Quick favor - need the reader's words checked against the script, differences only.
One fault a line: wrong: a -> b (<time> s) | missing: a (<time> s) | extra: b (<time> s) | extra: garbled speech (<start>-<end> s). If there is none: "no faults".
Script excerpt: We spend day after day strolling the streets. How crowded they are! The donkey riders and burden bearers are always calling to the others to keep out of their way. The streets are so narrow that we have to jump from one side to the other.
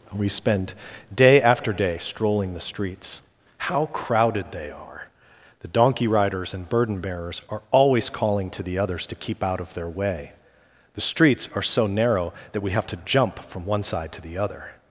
no faults